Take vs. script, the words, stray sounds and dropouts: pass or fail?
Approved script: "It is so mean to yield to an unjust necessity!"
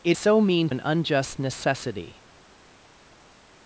fail